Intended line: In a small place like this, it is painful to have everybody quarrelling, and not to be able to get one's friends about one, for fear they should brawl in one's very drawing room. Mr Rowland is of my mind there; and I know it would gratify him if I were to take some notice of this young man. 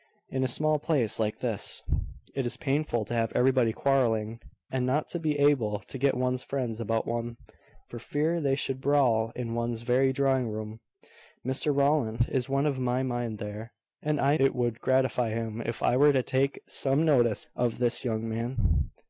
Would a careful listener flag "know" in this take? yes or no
yes